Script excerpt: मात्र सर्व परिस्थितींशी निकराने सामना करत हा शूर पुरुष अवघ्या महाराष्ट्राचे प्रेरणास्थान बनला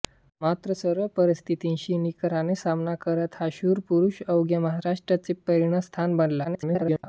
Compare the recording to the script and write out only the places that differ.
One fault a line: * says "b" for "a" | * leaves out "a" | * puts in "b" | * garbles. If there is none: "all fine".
* garbles